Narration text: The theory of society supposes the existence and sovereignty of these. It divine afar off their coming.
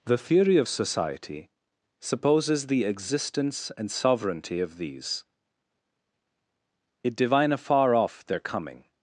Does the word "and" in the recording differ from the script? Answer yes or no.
no